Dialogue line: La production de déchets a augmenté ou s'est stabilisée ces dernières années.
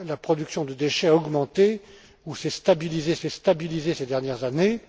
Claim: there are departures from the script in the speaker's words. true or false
true